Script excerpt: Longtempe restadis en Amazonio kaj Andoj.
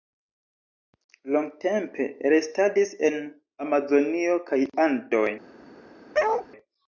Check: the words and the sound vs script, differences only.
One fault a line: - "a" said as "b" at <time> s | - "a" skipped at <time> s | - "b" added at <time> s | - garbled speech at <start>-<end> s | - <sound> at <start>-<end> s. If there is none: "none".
- bark at 6.1-6.5 s